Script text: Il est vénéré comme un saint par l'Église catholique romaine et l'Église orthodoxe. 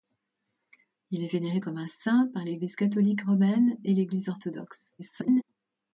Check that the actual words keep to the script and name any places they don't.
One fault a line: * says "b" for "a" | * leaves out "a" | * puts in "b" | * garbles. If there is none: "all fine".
* garbles